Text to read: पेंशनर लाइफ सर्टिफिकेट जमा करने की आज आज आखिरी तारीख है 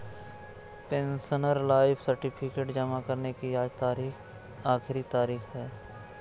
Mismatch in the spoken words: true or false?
true